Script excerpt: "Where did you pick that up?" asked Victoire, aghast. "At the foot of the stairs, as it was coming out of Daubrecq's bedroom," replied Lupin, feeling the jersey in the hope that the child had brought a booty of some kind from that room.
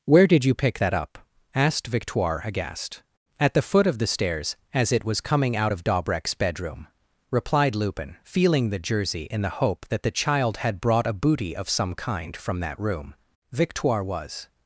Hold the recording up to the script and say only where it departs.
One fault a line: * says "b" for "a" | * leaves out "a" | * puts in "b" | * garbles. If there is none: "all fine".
* puts in "Victoire was"